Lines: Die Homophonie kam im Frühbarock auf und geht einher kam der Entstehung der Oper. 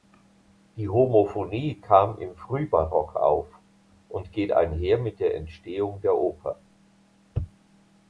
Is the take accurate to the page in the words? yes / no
no